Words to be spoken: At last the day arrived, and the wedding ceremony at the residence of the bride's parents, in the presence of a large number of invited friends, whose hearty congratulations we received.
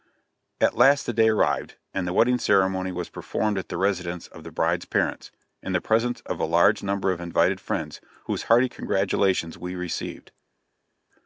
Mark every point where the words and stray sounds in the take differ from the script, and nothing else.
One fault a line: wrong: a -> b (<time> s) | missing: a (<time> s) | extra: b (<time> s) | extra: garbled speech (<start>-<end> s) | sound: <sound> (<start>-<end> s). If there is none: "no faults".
extra: was performed (2.9 s)